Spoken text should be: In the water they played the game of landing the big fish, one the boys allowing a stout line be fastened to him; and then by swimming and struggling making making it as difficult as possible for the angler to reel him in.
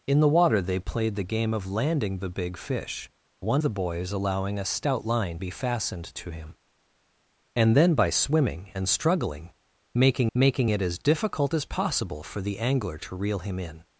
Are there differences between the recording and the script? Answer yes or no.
no